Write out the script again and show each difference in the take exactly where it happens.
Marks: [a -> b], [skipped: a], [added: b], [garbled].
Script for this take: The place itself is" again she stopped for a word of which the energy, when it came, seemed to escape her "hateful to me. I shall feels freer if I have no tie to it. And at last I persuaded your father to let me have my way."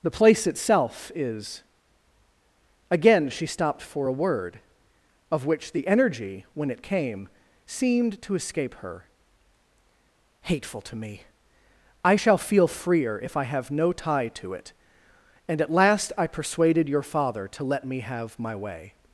The place itself is" again she stopped for a word of which the energy, when it came, seemed to escape her "hateful to me. I shall [feels -> feel] freer if I have no tie to it. And at last I persuaded your father to let me have my way."